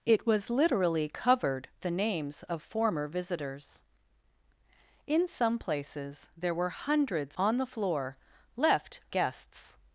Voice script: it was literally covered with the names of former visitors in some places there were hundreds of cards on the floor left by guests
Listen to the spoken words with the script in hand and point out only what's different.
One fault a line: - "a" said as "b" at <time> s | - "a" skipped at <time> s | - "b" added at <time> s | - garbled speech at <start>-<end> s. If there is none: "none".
- "with" skipped at 1.7 s
- "of cards" skipped at 7.4 s
- "by" skipped at 9.0 s